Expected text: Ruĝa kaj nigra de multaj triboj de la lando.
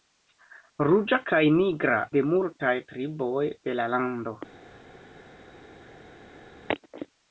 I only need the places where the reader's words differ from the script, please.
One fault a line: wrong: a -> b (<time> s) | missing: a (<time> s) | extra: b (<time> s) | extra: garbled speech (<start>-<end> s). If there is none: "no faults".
no faults